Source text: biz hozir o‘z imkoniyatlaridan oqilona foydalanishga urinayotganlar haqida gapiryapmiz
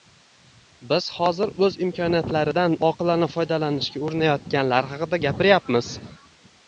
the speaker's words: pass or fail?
pass